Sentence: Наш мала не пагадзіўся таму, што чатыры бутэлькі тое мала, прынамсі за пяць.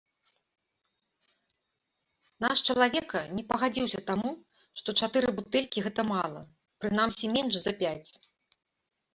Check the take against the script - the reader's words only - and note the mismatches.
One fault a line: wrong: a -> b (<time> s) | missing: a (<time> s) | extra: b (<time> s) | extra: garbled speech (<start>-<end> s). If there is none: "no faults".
wrong: мала -> чалавека (2.7 s)
wrong: тое -> гэта (5.9 s)
extra: менш (7.4 s)